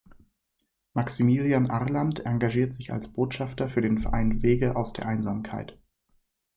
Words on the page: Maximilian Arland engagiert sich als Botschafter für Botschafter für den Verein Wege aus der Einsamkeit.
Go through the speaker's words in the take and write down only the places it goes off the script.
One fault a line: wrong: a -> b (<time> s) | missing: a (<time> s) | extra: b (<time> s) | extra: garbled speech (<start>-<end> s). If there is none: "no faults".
missing: Botschafter für (3.8 s)